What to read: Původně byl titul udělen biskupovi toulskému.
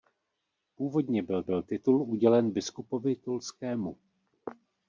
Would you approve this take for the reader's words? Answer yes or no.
no